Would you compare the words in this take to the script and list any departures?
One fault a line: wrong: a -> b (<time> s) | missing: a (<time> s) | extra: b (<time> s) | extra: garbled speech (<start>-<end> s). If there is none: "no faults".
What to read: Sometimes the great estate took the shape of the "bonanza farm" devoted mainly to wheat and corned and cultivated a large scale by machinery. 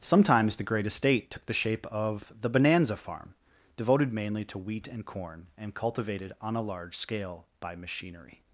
wrong: corned -> corn (5.0 s)
extra: on (6.4 s)